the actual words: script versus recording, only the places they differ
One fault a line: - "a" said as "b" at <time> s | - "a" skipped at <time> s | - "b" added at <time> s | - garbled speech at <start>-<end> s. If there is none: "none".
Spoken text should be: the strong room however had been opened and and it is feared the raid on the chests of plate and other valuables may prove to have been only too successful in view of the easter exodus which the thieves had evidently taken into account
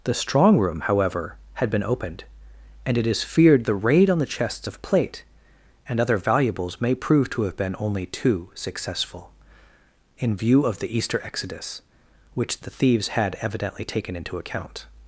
- "and" skipped at 3.0 s